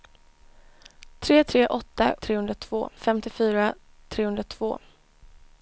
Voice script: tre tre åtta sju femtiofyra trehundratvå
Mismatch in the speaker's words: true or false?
true